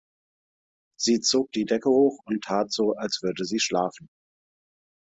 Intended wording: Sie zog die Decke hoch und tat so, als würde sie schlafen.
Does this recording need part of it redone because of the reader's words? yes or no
no